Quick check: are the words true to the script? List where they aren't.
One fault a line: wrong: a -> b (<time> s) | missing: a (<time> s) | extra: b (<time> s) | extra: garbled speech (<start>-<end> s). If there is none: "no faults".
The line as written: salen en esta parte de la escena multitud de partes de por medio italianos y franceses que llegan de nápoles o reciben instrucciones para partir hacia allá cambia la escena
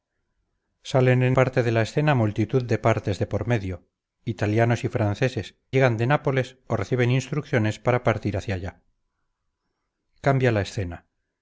missing: esta (1.4 s)
missing: que (5.6 s)